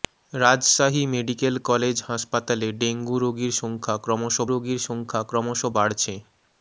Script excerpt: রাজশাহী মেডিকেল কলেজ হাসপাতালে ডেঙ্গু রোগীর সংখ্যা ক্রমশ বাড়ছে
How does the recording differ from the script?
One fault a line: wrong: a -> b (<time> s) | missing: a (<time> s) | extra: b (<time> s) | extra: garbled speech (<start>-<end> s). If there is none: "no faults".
extra: রোগীর সংখ্যা ক্রমশ (4.5 s)